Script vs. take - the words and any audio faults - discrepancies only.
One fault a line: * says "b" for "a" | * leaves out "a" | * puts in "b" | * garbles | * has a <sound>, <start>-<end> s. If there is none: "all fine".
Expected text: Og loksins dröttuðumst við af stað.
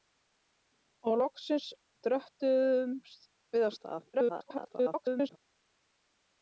* garbles